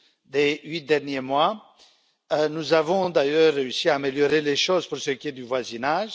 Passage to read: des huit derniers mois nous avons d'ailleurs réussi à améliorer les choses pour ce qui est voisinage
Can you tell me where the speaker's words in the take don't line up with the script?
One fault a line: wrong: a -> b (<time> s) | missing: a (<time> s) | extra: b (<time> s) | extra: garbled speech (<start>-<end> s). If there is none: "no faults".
extra: du (5.3 s)